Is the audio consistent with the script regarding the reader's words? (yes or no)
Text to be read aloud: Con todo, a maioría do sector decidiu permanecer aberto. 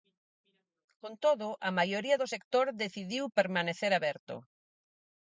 yes